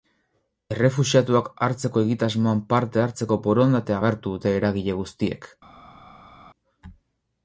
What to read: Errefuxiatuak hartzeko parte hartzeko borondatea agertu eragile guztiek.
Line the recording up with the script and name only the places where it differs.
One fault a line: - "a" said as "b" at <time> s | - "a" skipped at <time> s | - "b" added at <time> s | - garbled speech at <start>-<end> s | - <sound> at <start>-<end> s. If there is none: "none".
- "egitasmoan" added at 2.1 s
- "dute" added at 4.4 s